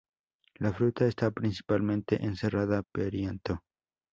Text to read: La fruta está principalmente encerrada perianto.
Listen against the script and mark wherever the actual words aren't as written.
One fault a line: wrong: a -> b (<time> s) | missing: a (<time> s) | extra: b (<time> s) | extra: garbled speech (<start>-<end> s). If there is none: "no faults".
no faults